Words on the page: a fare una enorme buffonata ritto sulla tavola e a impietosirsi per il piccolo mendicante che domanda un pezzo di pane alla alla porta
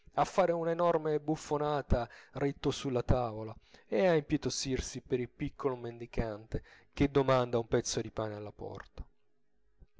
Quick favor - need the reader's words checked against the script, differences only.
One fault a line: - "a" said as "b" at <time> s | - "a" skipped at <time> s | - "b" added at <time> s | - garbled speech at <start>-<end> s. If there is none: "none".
- "alla" skipped at 8.5 s